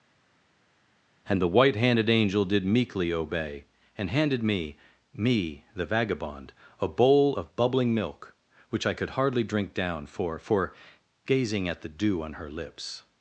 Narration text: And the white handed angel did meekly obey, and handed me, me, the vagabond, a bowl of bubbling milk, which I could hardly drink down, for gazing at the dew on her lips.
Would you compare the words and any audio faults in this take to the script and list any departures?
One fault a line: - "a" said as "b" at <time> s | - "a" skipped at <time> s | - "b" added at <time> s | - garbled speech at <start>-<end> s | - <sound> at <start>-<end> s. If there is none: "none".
- "for" added at 10.4 s